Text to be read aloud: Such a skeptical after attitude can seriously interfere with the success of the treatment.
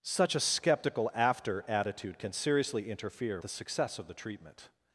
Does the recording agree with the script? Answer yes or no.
no